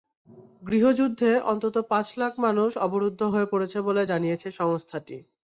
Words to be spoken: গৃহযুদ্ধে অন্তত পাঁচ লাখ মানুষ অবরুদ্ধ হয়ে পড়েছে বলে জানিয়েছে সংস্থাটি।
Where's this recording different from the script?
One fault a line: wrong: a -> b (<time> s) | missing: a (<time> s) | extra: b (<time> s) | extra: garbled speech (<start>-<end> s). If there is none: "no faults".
no faults